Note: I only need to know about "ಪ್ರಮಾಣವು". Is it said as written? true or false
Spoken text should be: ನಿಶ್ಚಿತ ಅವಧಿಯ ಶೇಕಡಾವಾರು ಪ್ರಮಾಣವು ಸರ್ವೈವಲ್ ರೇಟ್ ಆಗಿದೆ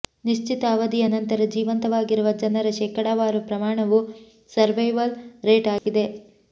true